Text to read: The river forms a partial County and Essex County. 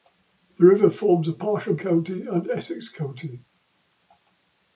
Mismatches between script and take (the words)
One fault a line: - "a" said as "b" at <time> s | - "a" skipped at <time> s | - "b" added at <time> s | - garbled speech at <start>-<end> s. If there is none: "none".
none